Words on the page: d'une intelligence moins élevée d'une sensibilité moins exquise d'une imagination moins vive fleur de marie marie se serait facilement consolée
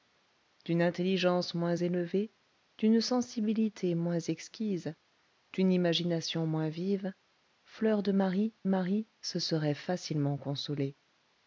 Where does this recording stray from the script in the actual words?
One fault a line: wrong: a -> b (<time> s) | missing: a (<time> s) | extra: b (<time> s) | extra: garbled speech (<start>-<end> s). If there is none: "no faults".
no faults